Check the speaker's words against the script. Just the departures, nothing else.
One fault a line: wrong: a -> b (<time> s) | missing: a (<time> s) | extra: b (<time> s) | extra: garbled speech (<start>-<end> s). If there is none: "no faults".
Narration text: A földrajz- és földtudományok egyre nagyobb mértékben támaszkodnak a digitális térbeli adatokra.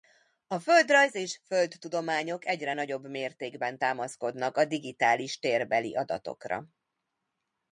no faults